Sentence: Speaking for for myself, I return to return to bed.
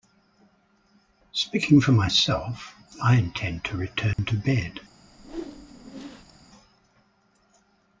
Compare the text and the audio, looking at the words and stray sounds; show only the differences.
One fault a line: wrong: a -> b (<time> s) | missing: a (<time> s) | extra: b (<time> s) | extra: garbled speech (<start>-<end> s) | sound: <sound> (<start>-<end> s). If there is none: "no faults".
missing: for (1.9 s)
wrong: return -> intend (3.2 s)
sound: dropout (4.1-4.2 s)
sound: whoosh (5.1-6.5 s)